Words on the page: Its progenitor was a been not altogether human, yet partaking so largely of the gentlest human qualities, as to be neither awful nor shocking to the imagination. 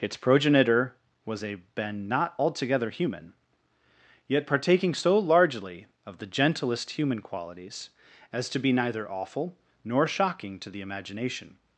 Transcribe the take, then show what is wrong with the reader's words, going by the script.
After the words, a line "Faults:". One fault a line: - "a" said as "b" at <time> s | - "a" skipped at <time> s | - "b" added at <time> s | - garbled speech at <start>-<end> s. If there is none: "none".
Its progenitor was a been not altogether human, yet partaking so largely of the gentlest human qualities, as to be neither awful nor shocking to the imagination.
Faults:
none